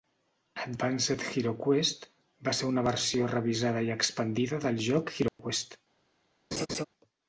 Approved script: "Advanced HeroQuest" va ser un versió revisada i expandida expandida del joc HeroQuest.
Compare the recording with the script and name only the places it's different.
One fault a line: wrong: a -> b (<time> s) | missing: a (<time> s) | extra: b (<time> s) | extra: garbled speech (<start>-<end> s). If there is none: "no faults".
wrong: un -> una (2.7 s)
missing: expandida (4.6 s)